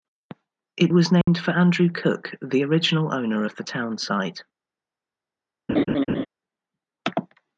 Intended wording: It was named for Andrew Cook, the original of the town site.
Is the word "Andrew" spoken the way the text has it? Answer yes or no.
yes